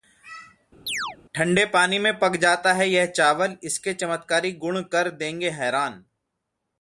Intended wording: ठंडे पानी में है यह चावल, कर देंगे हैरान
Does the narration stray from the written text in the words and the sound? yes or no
yes